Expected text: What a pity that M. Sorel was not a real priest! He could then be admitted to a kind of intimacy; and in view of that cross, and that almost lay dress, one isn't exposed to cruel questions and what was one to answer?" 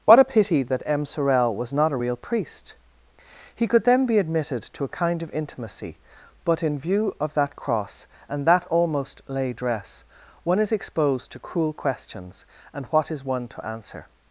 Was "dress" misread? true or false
false